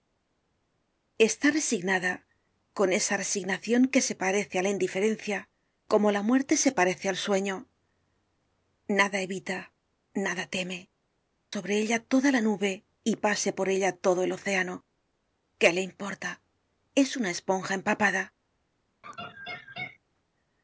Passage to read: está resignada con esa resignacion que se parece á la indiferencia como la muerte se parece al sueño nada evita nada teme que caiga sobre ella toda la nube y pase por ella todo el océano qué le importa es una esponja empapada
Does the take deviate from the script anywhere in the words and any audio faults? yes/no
yes